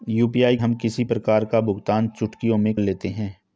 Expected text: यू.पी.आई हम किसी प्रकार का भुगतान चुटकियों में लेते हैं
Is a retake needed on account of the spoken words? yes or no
no